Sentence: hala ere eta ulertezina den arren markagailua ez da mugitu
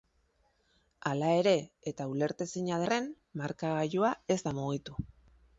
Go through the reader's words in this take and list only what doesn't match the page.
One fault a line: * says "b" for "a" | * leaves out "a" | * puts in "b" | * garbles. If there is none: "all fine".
* leaves out "den"